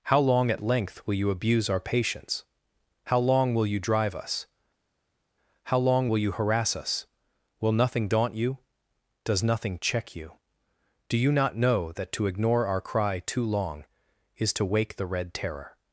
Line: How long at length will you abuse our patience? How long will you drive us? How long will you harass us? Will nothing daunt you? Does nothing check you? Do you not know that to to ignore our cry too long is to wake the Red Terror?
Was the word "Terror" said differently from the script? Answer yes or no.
no